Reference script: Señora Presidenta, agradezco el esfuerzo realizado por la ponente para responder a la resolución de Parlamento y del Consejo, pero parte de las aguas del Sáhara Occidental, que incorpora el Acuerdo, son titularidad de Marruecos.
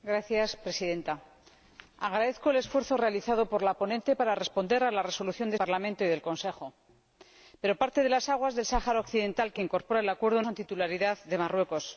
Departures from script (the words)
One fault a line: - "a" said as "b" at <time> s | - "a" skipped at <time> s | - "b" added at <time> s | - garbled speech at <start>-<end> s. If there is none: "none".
none